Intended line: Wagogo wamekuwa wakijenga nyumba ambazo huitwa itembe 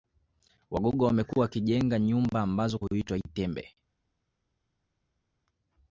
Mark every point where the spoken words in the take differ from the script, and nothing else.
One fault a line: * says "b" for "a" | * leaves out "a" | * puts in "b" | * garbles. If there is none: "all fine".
all fine